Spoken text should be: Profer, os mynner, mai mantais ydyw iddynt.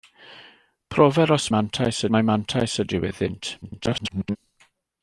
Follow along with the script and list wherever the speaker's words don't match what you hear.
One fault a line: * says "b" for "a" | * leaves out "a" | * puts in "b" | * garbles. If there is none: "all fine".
* says "mantais" for "mynner"
* garbles